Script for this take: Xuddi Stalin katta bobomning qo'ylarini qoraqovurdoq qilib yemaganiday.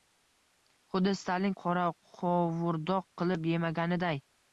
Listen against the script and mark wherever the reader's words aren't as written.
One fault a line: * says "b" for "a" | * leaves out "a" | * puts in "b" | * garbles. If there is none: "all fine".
* leaves out "katta bobomning qo'ylarini"